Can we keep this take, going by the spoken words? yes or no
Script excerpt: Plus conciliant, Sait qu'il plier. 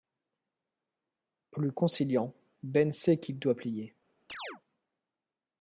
no